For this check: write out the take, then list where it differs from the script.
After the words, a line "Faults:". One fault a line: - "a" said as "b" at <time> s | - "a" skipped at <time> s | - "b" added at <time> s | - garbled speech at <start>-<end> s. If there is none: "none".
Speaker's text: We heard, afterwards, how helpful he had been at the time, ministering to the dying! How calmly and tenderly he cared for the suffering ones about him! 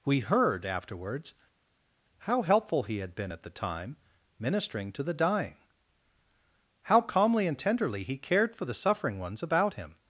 We heard, afterwards, how helpful he had been at the time, ministering to the dying! How calmly and tenderly he cared for the suffering ones about him!
Faults:
none